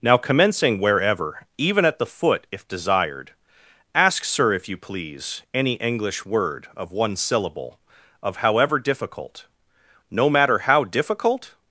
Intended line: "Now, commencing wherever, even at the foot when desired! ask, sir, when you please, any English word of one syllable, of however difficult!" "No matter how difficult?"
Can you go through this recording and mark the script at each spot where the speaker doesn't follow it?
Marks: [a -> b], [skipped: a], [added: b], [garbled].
"Now, commencing wherever, even at the foot [when -> if] desired! ask, sir, [when -> if] you please, any English word of one syllable, of however difficult!" "No matter how difficult?"